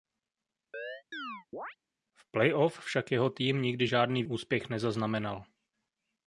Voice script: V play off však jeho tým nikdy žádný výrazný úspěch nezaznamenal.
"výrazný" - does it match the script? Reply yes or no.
no